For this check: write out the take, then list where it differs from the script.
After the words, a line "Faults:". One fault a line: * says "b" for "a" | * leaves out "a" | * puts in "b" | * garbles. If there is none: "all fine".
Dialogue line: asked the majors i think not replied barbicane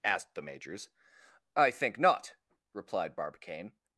asked the majors i think not replied barbicane
Faults:
all fine